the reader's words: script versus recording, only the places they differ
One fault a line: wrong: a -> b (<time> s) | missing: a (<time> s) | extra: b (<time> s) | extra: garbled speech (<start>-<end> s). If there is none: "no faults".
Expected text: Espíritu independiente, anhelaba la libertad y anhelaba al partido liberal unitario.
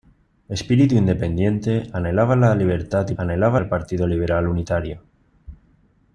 no faults